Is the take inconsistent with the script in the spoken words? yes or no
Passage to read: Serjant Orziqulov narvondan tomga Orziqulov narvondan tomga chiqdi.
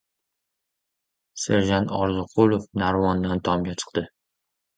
yes